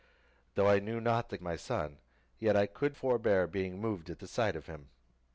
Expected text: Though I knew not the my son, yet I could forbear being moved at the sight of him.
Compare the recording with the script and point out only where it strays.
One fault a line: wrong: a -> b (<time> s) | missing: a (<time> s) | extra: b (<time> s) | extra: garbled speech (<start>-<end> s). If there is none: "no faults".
no faults